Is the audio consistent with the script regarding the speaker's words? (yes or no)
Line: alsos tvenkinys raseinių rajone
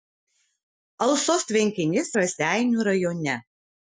yes